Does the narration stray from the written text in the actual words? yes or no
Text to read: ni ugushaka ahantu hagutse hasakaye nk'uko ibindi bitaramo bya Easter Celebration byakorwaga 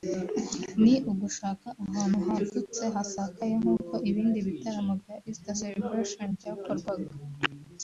no